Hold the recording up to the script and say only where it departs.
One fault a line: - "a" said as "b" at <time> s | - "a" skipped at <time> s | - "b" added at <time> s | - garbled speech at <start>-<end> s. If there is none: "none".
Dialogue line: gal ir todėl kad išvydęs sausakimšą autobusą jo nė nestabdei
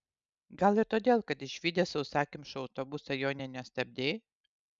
none